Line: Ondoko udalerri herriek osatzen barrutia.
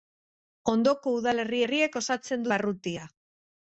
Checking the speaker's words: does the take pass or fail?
pass